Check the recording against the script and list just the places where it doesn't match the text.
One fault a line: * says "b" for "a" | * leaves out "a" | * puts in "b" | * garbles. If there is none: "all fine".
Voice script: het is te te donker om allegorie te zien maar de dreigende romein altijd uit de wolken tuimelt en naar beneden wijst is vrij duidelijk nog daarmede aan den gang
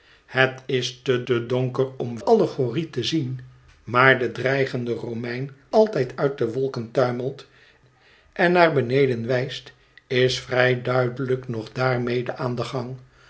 all fine